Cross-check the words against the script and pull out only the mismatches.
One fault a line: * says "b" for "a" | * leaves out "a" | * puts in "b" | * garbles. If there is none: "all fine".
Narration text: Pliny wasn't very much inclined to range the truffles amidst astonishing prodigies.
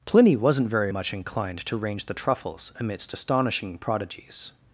all fine